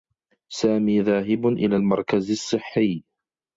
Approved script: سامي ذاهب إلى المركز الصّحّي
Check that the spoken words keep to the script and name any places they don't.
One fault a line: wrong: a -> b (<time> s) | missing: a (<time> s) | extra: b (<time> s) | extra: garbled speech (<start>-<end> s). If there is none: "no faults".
no faults